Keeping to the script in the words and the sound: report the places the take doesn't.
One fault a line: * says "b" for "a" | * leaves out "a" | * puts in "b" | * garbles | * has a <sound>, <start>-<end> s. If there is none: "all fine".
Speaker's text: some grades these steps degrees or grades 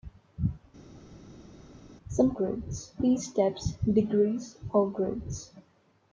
all fine